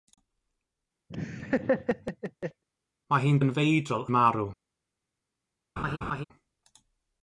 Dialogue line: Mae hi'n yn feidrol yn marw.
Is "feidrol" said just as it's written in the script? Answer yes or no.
yes